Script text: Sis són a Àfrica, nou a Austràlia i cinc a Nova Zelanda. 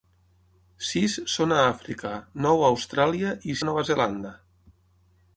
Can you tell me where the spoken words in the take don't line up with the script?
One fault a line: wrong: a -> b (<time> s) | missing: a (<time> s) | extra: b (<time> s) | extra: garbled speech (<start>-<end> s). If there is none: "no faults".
missing: cinc (3.6 s)